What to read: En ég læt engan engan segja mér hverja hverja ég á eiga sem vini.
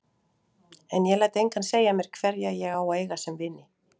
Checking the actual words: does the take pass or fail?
fail